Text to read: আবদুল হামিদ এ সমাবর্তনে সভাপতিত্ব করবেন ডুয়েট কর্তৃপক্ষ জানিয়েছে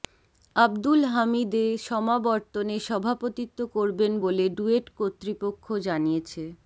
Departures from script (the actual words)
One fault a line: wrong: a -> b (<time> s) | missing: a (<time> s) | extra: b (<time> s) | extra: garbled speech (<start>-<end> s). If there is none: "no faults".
extra: বলে (4.2 s)